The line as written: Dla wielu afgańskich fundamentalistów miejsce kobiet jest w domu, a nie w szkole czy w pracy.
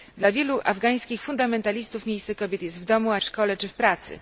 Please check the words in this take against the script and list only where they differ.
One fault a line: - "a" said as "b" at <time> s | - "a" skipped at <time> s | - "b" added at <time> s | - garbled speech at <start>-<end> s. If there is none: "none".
- "nie" skipped at 3.2 s